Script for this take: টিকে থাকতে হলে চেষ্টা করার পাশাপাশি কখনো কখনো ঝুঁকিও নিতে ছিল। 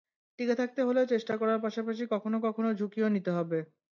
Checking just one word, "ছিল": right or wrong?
wrong